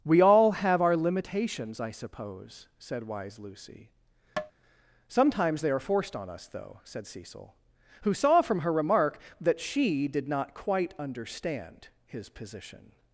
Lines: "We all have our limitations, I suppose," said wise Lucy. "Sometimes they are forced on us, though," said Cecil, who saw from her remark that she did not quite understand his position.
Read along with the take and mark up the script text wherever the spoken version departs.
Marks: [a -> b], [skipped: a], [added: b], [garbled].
"We all have our limitations, I suppose," said wise Lucy. "Sometimes they are forced on us, though," said Cecil, who saw from her remark that she did not quite understand his position.